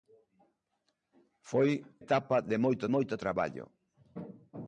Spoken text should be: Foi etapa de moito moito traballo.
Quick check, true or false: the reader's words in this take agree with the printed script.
true